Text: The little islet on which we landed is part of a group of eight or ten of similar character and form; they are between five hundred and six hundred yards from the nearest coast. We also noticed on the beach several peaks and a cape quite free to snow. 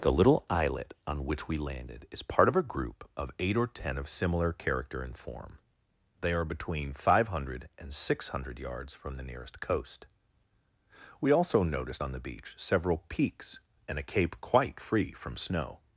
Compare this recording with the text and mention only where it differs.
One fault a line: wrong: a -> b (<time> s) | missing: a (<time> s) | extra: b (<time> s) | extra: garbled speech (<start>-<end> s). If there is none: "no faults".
wrong: to -> from (15.1 s)